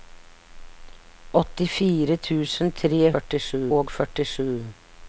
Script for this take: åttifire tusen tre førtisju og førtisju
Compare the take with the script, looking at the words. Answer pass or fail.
pass